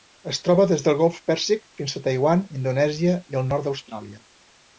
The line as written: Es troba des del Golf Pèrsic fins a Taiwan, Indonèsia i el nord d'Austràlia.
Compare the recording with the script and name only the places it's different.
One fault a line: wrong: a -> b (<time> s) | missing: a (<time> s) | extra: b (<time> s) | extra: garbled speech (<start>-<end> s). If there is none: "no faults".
no faults